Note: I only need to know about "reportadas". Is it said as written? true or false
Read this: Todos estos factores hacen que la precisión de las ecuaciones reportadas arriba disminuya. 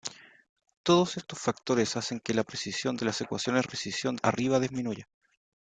false